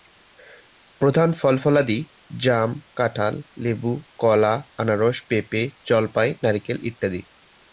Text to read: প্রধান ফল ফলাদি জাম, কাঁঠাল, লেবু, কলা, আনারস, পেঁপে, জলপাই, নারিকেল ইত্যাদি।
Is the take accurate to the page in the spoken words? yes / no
yes